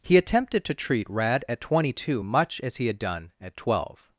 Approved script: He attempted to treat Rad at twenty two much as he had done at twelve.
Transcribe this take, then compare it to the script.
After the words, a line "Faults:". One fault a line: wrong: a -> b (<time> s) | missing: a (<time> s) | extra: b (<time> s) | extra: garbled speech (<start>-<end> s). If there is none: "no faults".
He attempted to treat Rad at twenty two much as he had done at twelve.
Faults:
no faults